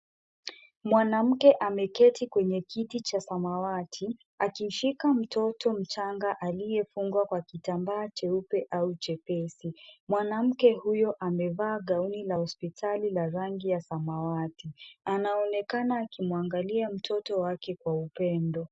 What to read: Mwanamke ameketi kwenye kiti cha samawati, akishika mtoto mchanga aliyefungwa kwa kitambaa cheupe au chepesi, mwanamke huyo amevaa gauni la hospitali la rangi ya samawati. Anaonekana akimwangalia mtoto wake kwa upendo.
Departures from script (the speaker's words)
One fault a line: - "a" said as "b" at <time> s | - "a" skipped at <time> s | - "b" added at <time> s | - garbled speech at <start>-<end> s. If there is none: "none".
none